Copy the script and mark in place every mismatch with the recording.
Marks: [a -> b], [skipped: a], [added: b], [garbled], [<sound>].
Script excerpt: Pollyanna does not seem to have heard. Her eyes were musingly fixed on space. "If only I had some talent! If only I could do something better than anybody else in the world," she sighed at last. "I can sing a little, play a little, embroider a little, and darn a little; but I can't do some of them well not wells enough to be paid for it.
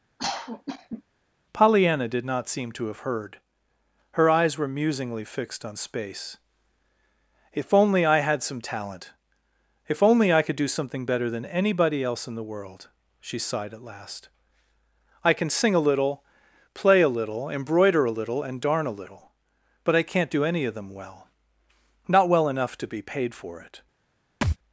[cough] Pollyanna [does -> did] not seem to have heard. Her eyes were musingly fixed on space. "If only I had some talent! If only I could do something better than anybody else in the world," she sighed at last. "I can sing a little, play a little, embroider a little, and darn a little; but I can't do [some -> any] of them well not [wells -> well] enough to be paid for it. [thud]